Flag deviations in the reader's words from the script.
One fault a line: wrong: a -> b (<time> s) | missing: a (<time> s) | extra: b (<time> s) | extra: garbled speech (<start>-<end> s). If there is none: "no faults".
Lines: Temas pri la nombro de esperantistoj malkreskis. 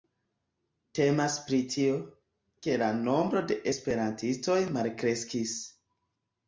extra: tio ke (1.8 s)